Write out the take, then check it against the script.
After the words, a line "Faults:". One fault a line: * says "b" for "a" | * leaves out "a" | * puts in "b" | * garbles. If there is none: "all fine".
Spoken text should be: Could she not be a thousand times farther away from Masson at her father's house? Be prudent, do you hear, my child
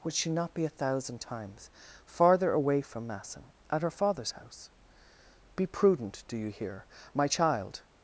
Would she not be a thousand times farther away from Masson at her father's house? Be prudent, do you hear, my child
Faults:
* says "Would" for "Could"